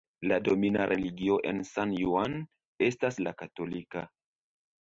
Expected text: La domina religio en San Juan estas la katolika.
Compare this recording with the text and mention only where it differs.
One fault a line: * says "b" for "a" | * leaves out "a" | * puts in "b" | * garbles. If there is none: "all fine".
all fine